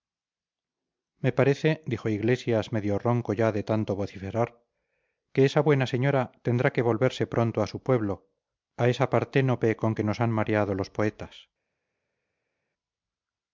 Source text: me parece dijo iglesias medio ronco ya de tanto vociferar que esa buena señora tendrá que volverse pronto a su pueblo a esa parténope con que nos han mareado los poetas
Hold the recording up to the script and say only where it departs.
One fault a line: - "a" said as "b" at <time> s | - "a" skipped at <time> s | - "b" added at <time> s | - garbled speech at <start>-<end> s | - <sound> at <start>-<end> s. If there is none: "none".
none